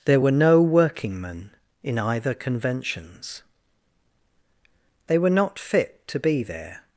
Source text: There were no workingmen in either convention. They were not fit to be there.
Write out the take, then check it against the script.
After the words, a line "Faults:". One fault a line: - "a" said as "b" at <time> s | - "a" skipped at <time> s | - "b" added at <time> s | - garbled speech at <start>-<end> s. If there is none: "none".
There were no workingmen in either conventions. They were not fit to be there.
Faults:
- "convention" said as "conventions" at 2.3 s